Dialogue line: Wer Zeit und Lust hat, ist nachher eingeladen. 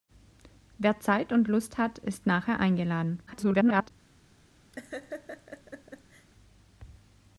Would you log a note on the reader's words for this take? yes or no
yes